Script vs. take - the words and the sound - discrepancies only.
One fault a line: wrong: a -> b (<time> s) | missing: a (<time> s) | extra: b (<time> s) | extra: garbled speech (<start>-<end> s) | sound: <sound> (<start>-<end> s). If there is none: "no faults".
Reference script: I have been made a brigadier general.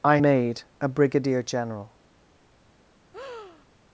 missing: have been (0.2 s)
sound: breath (3.1-3.7 s)